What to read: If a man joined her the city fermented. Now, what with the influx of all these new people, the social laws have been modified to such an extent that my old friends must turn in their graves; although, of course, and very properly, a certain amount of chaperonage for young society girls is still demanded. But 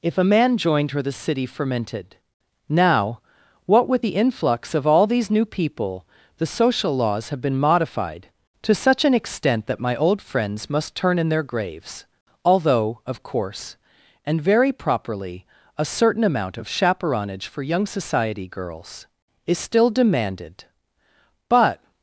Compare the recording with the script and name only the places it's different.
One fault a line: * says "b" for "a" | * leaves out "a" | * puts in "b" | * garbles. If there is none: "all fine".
all fine